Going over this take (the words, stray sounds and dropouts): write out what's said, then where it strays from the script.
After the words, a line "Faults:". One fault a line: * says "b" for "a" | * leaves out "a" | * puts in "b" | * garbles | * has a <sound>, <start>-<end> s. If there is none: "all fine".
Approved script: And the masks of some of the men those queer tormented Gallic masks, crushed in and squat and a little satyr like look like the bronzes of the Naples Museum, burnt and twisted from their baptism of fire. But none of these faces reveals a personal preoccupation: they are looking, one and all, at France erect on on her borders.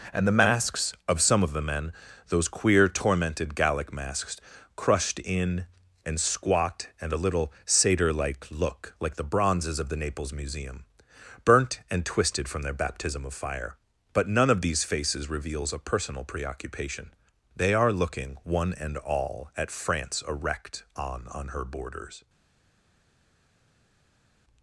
And the masks of some of the men those queer tormented Gallic masks, crushed in and squat and a little satyr like look like the bronzes of the Naples Museum, burnt and twisted from their baptism of fire. But none of these faces reveals a personal preoccupation: they are looking, one and all, at France erect on on her borders.
Faults:
all fine